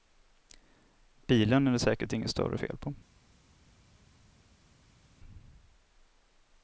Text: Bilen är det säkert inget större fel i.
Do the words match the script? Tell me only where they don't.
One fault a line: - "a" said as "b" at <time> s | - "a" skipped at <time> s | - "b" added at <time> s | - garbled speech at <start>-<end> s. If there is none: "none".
- "i" said as "på" at 2.8 s